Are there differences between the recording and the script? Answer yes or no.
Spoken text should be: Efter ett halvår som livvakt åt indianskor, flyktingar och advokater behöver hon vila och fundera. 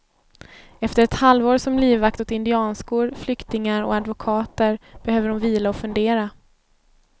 no